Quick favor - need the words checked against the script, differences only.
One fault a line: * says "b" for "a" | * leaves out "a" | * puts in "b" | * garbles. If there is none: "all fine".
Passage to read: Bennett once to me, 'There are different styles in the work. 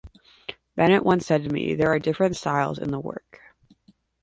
* puts in "said"